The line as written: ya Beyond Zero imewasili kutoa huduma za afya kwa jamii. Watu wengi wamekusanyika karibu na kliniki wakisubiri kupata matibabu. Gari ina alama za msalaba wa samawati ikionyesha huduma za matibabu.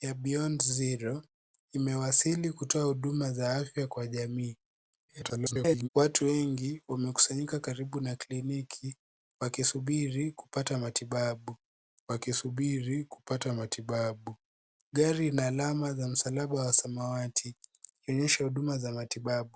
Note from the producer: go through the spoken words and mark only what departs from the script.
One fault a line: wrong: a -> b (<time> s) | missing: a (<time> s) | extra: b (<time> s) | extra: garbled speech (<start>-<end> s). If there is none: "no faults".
extra: garbled speech (5.1-5.9 s)
extra: wakisubiri kupata matibabu (12.1 s)